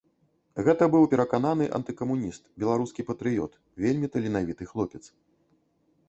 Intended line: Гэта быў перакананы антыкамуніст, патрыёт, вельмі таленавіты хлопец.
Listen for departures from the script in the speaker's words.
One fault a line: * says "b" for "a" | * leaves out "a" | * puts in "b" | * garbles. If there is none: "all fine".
* puts in "беларускі"